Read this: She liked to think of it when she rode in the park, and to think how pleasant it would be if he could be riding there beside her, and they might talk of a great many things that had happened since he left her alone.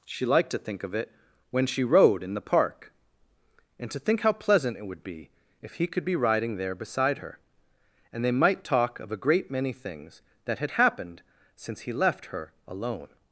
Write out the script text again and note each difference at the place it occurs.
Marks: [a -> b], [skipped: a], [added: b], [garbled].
She liked to think of it when she rode in the park, and to think how pleasant it would be if he could be riding there beside her, and they might talk of a great many things that had happened since he left her alone.